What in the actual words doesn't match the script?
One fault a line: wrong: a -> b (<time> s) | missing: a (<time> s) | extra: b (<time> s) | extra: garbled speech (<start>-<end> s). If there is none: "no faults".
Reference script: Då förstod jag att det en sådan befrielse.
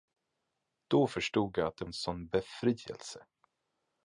no faults